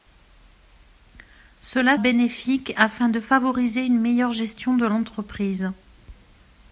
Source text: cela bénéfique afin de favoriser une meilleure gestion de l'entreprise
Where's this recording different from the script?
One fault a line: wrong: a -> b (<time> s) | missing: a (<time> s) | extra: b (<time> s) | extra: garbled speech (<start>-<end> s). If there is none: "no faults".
no faults